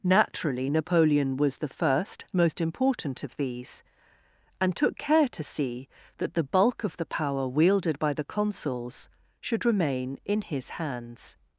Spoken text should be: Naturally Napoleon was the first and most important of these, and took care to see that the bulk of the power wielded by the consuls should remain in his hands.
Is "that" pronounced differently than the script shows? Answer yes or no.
no